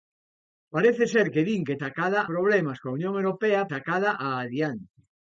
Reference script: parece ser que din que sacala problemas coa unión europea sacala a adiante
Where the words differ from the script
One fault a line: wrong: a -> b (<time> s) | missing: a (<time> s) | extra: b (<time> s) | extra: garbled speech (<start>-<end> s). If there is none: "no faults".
no faults